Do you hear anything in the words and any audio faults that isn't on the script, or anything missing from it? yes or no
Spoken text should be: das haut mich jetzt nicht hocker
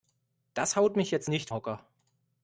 no